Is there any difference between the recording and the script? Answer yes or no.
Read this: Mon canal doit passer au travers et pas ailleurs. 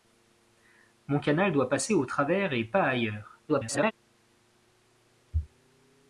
yes